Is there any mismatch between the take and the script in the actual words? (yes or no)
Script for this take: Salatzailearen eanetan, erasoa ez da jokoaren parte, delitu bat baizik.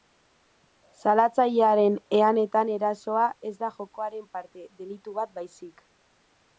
no